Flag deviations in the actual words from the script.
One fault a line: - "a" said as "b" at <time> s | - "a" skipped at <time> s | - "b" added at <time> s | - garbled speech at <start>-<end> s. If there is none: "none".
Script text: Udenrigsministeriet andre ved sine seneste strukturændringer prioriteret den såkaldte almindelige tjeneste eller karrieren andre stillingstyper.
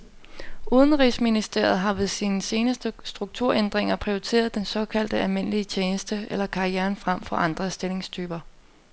- "andre" said as "har" at 1.8 s
- "frem for" added at 7.0 s